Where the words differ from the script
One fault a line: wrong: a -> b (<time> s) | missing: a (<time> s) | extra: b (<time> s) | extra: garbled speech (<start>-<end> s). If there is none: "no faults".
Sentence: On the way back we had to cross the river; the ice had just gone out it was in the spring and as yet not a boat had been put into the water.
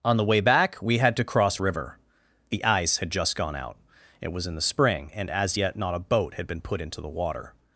missing: the (1.6 s)